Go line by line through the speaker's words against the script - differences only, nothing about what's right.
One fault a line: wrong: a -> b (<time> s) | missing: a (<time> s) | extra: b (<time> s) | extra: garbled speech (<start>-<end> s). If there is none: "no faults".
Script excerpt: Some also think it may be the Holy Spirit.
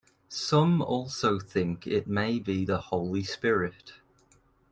no faults